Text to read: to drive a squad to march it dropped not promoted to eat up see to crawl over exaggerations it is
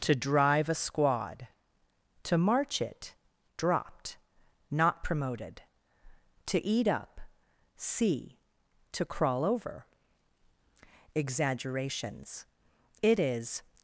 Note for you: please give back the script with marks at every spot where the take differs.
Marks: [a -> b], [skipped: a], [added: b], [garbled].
to drive a squad to march it dropped not promoted to eat up see to crawl over exaggerations it is